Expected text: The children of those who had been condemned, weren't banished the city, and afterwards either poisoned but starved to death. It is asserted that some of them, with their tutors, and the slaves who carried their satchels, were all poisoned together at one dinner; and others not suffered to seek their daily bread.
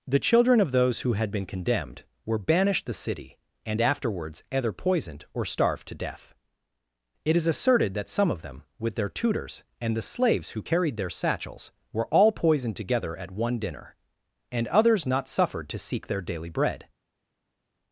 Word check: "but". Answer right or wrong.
wrong